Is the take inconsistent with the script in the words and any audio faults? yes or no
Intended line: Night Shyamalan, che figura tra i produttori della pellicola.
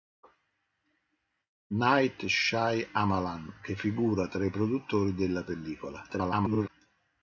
yes